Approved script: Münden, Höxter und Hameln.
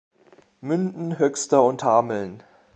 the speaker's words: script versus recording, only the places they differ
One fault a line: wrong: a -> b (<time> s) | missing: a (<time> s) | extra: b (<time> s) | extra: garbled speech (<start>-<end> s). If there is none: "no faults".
no faults